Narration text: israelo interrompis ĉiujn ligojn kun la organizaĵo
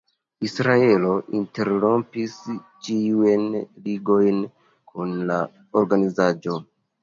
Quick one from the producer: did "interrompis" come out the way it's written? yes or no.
yes